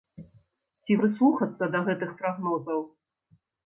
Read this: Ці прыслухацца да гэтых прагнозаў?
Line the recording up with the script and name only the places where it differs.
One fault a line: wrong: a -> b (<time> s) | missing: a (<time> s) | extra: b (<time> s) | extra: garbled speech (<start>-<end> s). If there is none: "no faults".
no faults